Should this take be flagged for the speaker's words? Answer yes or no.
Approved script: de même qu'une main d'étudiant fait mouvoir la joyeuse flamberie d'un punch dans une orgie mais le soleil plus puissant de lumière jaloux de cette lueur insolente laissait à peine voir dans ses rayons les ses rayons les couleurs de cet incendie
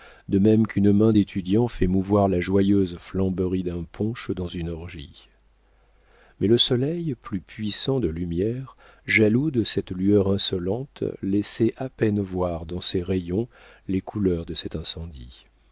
yes